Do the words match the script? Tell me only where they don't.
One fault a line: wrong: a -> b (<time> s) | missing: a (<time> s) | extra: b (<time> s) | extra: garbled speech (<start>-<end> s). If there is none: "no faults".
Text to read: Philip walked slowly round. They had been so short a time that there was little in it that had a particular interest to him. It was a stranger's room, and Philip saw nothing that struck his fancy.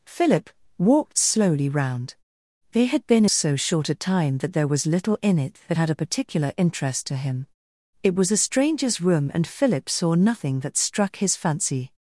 no faults